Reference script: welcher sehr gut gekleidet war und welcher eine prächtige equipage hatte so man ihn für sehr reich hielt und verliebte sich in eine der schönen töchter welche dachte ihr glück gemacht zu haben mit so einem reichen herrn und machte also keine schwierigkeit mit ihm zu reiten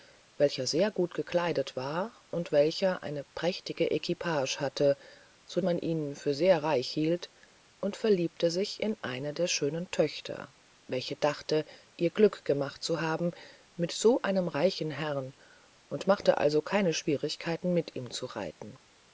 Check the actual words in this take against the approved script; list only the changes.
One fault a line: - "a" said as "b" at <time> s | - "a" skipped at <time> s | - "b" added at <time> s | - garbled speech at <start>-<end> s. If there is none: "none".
none